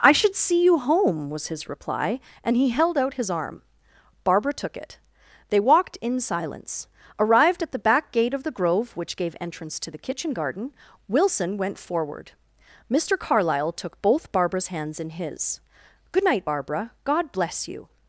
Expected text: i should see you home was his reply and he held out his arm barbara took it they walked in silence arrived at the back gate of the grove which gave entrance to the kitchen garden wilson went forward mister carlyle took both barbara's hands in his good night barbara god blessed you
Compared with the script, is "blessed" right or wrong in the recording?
wrong